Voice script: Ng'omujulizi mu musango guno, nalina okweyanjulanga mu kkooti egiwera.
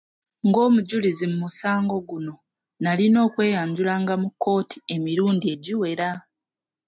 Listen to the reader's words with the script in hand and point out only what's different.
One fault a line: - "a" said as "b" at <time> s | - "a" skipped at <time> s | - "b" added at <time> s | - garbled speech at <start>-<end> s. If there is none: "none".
- "emirundi" added at 4.9 s